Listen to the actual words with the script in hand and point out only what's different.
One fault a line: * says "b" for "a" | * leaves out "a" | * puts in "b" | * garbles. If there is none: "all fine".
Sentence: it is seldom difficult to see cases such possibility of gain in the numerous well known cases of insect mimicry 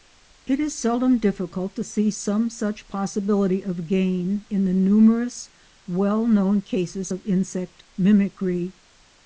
* says "some" for "cases"